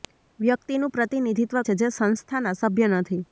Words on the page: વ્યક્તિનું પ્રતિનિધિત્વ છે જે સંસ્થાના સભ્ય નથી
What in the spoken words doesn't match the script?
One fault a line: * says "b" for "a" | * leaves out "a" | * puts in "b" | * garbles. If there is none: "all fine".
all fine